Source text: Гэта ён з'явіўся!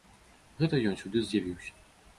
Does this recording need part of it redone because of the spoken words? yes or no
yes